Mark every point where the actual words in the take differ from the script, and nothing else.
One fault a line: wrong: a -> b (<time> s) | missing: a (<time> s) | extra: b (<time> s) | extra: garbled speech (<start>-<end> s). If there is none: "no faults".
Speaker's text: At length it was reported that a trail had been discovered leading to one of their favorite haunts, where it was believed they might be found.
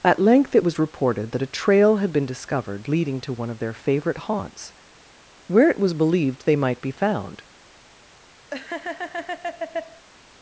no faults